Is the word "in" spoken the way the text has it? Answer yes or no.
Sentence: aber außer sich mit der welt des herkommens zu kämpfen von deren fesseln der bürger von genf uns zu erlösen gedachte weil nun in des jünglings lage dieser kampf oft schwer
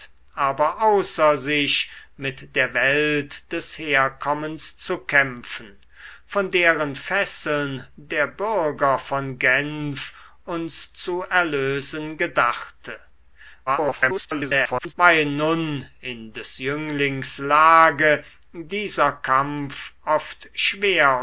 yes